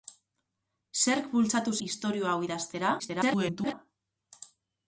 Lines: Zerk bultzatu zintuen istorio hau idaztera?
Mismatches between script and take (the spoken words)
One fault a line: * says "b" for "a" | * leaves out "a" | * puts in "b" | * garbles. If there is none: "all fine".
* leaves out "zintuen"
* garbles